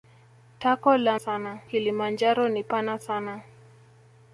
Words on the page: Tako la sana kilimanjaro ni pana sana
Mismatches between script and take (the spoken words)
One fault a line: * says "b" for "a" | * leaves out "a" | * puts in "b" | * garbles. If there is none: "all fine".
all fine